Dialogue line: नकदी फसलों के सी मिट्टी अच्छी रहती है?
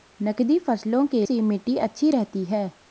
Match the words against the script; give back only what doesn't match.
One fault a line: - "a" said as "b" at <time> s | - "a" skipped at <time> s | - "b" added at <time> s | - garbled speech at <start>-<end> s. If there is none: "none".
none